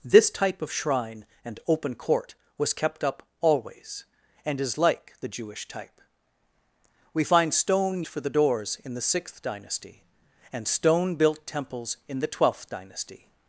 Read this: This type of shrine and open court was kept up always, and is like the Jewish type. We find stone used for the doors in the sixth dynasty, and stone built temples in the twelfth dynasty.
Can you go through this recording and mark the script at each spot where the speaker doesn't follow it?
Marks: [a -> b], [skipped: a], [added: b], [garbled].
This type of shrine and open court was kept up always, and is like the Jewish type. We find stone [skipped: used] for the doors in the sixth dynasty, and stone built temples in the twelfth dynasty.